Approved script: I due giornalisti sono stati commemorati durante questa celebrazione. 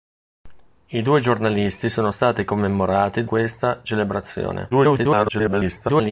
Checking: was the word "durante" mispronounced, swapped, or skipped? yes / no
yes